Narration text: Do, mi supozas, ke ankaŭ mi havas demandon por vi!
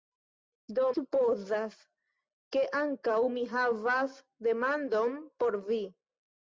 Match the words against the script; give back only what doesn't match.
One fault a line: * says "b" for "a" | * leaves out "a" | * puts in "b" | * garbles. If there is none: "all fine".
* leaves out "mi"